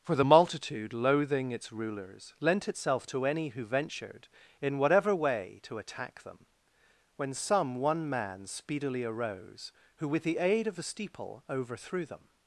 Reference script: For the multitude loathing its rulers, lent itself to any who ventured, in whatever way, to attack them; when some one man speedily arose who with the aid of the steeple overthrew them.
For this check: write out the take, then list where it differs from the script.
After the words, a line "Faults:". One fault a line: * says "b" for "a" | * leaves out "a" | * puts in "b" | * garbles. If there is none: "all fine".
For the multitude loathing its rulers, lent itself to any who ventured, in whatever way, to attack them; when some one man speedily arose who with the aid of the steeple overthrew them.
Faults:
all fine